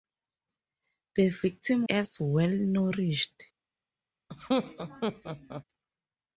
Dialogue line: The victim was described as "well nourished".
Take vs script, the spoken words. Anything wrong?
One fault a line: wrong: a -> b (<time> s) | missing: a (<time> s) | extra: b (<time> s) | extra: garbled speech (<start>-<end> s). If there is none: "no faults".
missing: was described (1.8 s)